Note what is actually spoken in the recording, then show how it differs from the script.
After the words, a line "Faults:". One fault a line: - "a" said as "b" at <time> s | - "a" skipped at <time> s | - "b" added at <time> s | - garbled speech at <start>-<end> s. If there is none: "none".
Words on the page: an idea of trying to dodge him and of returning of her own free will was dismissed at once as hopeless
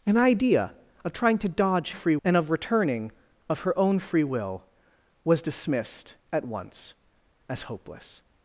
an idea of trying to dodge free and of returning of her own free will was dismissed at once as hopeless
Faults:
- "him" said as "free" at 1.9 s